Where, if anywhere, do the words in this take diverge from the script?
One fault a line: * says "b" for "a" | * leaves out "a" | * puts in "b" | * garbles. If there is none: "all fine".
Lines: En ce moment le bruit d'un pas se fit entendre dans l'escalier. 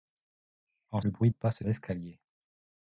* leaves out "ce moment"
* leaves out "d'un"
* leaves out "fit entendre dans"